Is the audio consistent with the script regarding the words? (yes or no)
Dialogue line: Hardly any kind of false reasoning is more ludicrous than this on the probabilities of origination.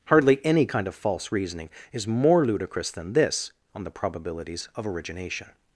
yes